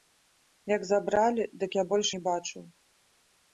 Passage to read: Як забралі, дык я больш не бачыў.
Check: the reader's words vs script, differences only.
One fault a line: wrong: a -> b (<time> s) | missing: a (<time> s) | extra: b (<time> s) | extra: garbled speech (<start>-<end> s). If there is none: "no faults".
no faults